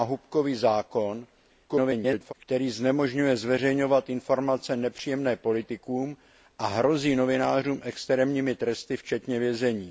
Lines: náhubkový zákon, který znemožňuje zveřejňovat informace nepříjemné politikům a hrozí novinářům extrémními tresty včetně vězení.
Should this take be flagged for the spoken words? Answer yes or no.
yes